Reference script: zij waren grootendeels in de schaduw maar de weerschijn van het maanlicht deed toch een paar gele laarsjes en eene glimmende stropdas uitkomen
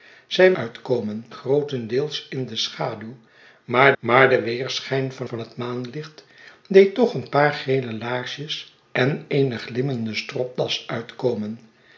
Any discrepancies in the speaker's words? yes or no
yes